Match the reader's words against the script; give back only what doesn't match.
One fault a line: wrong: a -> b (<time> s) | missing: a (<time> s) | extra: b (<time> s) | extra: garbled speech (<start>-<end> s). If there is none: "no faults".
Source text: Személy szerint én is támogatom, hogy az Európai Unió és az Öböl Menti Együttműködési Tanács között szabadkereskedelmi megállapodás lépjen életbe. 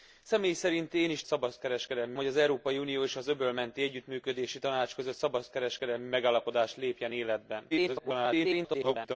wrong: támogatom -> szabadkereskedelmi (1.2 s)
extra: garbled speech (7.7-9.2 s)